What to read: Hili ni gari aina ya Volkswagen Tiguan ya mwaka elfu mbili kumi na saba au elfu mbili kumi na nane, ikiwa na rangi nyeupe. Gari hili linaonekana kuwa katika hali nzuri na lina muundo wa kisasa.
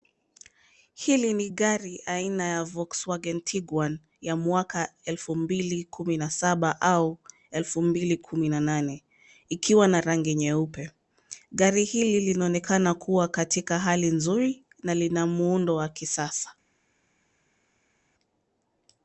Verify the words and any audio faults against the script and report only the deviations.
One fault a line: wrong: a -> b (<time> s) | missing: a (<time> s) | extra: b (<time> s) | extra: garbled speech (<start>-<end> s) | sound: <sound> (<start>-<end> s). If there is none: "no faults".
no faults